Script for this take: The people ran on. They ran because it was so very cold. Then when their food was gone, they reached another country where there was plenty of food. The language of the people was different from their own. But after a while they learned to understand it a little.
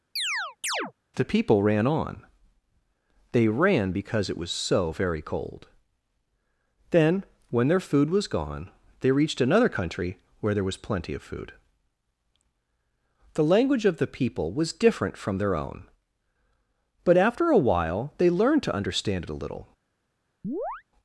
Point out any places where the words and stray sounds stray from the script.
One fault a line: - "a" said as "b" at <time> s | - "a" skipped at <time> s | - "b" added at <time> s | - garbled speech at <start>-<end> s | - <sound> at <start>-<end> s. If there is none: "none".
- chirp at 0.2-0.9 s
- chirp at 20.4-20.8 s